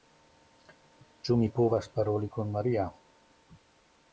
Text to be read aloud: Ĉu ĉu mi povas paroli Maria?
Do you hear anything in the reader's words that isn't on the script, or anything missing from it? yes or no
yes